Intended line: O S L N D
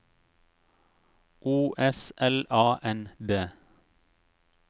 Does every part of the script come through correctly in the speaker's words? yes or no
no